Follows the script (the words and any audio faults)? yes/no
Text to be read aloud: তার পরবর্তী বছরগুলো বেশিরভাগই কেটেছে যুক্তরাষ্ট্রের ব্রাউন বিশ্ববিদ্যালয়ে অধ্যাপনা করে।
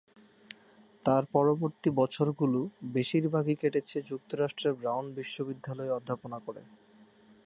yes